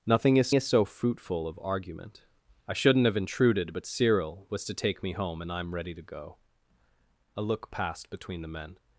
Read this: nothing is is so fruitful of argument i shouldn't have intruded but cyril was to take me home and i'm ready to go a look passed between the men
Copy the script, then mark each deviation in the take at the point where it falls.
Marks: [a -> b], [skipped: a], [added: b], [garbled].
nothing is is so fruitful of argument i shouldn't have intruded but cyril was to take me home and i'm ready to go a look passed between the men